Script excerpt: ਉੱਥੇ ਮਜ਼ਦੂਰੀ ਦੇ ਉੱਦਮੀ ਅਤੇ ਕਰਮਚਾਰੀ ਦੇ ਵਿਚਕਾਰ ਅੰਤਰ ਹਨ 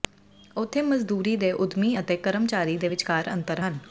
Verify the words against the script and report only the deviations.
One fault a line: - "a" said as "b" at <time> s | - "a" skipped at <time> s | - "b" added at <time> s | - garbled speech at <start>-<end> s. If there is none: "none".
none